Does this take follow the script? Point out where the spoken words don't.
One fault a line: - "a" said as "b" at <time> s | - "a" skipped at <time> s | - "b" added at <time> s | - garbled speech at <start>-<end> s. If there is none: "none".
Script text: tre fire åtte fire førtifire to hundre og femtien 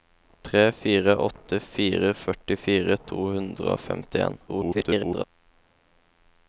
- garbled speech at 4.5-5.2 s